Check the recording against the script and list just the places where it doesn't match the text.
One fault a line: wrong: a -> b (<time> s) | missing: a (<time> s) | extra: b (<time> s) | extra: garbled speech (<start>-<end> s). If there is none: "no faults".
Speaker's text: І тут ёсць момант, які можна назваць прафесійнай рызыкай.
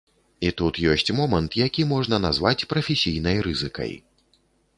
no faults